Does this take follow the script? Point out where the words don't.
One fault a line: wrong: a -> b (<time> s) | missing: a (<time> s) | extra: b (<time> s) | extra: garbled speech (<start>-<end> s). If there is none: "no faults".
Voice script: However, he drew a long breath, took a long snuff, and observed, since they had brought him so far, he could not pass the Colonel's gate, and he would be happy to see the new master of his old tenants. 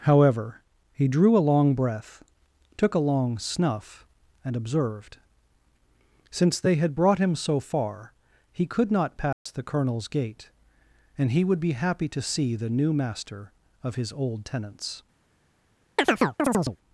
no faults